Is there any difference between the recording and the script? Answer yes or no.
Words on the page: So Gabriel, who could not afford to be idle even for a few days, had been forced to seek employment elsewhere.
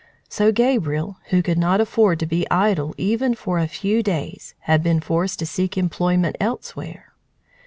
no